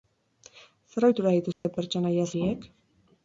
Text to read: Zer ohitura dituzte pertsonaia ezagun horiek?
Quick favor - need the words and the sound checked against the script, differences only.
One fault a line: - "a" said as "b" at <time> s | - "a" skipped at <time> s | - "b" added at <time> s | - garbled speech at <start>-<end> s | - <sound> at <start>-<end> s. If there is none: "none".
- dropout at 1.5-1.6 s
- "ezagun" skipped at 2.3 s